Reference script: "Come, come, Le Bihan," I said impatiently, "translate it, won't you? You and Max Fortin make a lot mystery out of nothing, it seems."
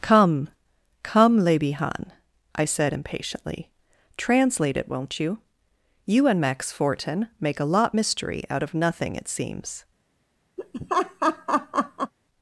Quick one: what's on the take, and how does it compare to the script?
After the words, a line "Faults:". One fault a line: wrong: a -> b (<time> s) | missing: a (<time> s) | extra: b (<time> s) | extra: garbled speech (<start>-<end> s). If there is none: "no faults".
"Come, come, Le Bihan," I said impatiently, "translate it, won't you? You and Max Fortin make a lot mystery out of nothing, it seems."
Faults:
no faults